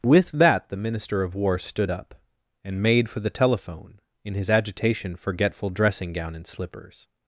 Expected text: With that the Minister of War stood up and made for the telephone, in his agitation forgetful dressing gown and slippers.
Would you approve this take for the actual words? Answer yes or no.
yes